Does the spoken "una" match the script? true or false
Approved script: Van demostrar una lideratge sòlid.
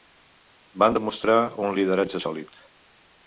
false